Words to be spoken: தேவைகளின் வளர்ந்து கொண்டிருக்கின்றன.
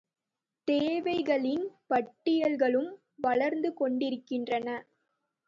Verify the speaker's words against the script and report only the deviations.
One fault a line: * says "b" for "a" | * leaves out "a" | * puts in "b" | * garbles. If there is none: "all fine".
* puts in "பட்டியல்களும்"